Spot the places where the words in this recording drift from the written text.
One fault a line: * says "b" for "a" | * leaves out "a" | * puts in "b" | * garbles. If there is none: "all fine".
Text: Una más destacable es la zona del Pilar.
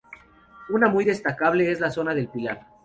* says "muy" for "más"